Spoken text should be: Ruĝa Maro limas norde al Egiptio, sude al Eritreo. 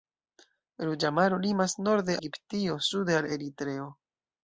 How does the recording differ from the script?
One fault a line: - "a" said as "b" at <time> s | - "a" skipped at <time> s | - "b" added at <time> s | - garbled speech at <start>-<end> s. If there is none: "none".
- "al" skipped at 2.1 s